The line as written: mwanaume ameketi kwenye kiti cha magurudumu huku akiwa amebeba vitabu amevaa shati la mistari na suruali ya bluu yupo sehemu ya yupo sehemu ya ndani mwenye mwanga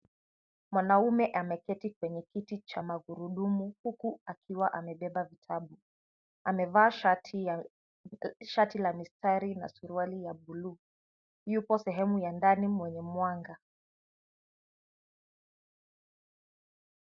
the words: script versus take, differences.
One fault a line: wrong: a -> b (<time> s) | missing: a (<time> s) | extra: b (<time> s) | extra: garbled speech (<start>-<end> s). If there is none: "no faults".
missing: yupo sehemu ya (12.3 s)